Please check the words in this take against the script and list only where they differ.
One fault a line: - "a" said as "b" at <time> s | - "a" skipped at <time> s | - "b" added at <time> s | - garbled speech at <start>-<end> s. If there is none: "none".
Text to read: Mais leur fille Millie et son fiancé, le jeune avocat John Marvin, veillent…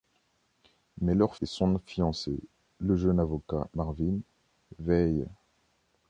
- "fille Millie" skipped at 1.4 s
- "John" skipped at 3.7 s